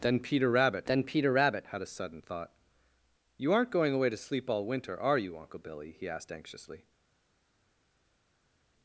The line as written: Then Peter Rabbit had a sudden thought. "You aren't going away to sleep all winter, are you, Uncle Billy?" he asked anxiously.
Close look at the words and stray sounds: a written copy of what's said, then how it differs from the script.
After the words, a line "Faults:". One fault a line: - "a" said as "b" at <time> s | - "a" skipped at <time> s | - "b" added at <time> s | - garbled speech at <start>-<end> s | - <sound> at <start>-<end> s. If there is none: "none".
Then Peter Rabbit then Peter Rabbit had a sudden thought. "You aren't going away to sleep all winter, are you, Uncle Billy?" he asked anxiously.
Faults:
- "then Peter Rabbit" added at 0.9 s